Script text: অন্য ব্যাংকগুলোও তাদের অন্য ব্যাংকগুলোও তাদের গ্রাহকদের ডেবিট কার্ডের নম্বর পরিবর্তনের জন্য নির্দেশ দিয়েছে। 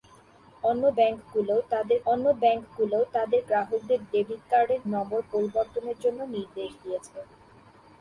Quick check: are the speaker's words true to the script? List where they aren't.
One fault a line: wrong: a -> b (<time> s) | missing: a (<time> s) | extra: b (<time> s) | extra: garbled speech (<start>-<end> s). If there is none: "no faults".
no faults